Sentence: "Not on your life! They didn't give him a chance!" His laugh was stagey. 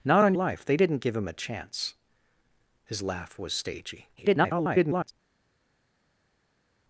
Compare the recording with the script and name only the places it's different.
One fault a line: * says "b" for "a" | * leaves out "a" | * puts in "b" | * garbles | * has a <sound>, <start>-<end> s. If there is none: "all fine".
* leaves out "your"
* garbles